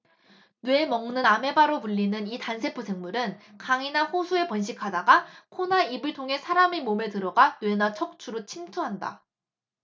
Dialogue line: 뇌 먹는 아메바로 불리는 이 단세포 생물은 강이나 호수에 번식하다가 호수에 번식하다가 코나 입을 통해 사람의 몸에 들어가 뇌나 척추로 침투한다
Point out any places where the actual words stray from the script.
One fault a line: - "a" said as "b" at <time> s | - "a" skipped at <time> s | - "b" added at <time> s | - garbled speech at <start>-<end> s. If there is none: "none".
- "호수에 번식하다가" skipped at 5.3 s